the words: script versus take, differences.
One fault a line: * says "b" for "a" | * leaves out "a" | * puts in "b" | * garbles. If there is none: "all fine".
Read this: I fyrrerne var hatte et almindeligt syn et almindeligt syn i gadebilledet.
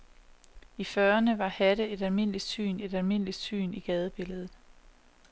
all fine